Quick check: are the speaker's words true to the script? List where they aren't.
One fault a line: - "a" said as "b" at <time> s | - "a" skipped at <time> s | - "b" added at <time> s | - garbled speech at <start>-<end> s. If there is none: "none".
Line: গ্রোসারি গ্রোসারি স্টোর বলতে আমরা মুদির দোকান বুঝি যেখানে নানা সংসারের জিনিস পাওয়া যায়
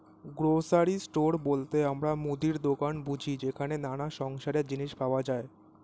- "গ্রোসারি" skipped at 0.9 s